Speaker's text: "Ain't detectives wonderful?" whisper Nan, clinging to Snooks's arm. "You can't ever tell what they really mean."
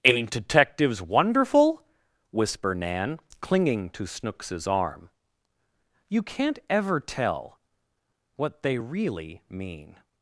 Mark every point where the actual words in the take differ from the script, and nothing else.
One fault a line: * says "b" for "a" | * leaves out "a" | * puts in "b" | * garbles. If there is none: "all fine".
all fine